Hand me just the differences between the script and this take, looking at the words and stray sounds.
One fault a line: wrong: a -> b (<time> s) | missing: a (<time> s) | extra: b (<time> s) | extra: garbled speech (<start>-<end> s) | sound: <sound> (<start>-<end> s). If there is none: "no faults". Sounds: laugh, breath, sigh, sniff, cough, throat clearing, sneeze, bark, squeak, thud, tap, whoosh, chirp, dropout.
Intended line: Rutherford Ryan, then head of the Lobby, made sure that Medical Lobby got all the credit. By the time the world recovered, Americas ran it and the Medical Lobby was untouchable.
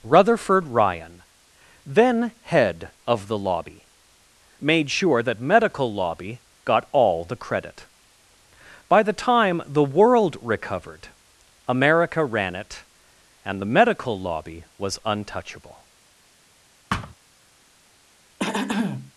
wrong: Americas -> America (11.7 s)
sound: thud (16.9-17.1 s)
sound: throat clearing (18.4-19.1 s)